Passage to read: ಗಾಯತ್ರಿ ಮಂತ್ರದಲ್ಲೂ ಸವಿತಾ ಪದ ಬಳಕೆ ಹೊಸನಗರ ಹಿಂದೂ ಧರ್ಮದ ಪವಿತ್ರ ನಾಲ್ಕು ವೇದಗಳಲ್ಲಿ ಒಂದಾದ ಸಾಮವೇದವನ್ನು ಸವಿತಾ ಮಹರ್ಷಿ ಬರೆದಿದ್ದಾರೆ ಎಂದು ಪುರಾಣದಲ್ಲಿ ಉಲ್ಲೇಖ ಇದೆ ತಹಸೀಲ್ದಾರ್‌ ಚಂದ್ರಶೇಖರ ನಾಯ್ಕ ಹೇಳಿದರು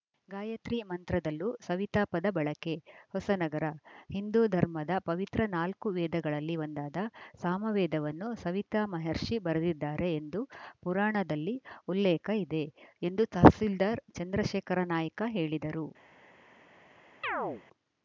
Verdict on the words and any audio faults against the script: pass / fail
fail